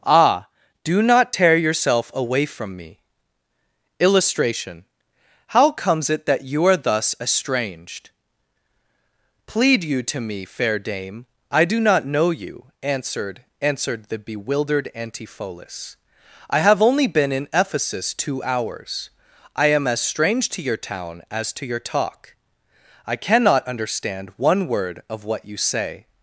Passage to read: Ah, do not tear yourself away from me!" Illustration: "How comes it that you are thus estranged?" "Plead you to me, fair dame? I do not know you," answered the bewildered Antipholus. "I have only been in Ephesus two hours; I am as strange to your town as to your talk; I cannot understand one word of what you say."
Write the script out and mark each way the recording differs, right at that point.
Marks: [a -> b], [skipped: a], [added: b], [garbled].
Ah, do not tear yourself away from me!" Illustration: "How comes it that you are thus estranged?" "Plead you to me, fair dame? I do not know you," answered [added: answered] the bewildered Antipholus. "I have only been in Ephesus two hours; I am as strange to your town as to your talk; I cannot understand one word of what you say."